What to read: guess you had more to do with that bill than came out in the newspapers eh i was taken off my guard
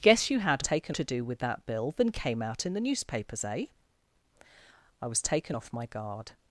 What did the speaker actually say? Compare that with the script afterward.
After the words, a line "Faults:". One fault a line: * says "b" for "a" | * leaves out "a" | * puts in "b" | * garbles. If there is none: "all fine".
guess you had taken to do with that bill than came out in the newspapers eh i was taken off my guard
Faults:
* says "taken" for "more"